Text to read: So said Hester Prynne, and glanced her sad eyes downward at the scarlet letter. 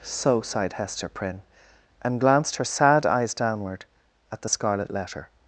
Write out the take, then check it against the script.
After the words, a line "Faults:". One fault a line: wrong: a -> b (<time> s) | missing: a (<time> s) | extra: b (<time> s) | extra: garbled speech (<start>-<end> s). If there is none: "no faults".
So sighed Hester Prynne, and glanced her sad eyes downward at the scarlet letter.
Faults:
wrong: said -> sighed (0.4 s)